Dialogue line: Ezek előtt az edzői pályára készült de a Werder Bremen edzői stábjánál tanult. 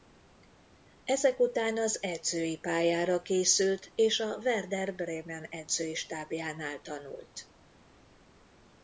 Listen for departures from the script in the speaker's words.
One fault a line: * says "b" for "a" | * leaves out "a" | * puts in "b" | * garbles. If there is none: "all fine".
* says "után" for "előtt"
* says "és" for "de"